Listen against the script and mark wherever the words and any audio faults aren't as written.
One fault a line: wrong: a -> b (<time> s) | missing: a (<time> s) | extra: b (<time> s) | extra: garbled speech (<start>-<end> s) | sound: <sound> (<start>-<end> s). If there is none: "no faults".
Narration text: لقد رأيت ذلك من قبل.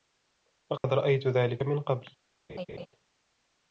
sound: dropout (0.8-0.8 s)
sound: laugh (2.5-2.9 s)